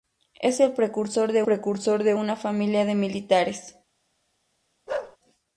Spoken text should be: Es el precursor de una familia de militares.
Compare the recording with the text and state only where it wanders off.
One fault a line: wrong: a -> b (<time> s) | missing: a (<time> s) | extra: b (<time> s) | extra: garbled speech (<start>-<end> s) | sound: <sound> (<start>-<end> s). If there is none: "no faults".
extra: precursor de (1.4 s)
sound: bark (4.9-5.2 s)